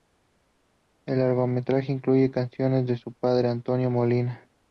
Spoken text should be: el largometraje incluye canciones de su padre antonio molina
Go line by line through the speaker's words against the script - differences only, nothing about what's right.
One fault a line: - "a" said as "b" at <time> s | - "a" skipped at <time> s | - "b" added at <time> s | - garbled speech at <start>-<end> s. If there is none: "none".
none